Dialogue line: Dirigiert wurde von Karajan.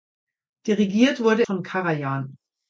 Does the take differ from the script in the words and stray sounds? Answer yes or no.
no